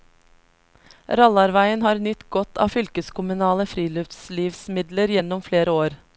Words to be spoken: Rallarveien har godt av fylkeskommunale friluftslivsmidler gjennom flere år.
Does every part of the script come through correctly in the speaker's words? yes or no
no